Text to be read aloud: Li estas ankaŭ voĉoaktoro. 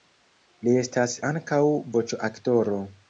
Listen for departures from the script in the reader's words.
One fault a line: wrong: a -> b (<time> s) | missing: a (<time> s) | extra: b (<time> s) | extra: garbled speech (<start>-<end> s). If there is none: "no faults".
no faults